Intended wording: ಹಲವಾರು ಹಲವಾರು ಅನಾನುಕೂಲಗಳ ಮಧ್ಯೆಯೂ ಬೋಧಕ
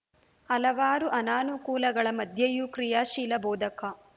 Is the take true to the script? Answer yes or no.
no